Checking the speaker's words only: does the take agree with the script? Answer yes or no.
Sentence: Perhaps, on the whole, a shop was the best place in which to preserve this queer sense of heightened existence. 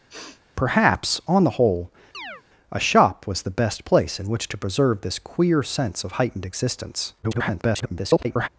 no